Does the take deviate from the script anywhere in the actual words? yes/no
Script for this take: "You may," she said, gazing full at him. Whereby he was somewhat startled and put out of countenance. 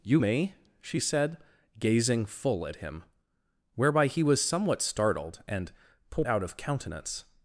no